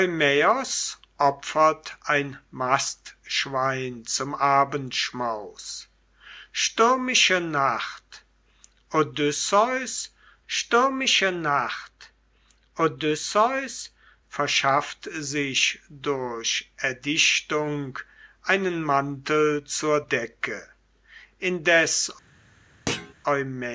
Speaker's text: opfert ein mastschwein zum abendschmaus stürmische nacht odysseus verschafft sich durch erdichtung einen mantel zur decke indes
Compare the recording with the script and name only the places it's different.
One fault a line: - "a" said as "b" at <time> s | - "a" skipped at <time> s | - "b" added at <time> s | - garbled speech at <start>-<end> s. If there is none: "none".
- "stürmische nacht odysseus" added at 10.5 s